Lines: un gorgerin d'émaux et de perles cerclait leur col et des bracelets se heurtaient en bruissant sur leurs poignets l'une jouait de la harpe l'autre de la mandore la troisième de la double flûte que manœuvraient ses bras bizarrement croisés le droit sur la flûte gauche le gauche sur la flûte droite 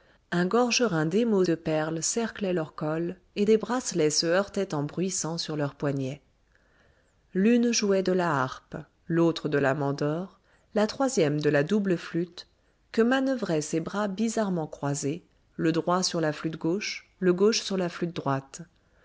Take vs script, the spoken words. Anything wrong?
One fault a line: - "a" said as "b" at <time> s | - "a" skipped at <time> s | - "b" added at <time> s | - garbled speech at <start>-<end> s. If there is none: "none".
- "et" skipped at 1.4 s